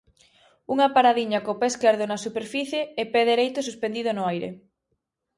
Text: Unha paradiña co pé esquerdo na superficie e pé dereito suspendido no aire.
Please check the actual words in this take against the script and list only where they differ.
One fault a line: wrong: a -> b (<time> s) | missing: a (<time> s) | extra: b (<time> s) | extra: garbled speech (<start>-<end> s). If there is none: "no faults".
no faults